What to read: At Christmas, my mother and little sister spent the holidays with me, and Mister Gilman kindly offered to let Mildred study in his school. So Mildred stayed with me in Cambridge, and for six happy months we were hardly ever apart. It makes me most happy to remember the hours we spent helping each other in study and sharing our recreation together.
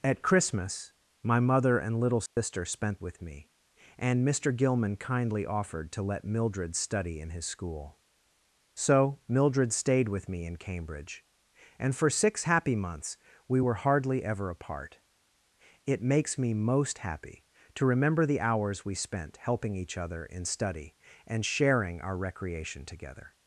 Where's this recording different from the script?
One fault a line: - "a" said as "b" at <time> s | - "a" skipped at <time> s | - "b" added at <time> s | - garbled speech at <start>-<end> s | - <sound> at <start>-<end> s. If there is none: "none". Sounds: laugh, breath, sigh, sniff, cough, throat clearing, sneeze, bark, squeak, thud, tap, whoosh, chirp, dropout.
- dropout at 2.3-2.4 s
- "the holidays" skipped at 3.0 s